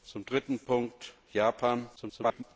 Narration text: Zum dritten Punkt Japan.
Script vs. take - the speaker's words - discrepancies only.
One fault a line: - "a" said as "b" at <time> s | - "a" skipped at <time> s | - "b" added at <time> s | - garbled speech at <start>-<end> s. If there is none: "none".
- garbled speech at 2.0-2.4 s